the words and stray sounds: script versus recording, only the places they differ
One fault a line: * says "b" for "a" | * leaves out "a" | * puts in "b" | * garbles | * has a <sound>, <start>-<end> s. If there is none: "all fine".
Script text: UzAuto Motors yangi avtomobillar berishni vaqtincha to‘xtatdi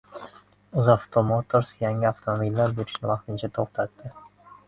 all fine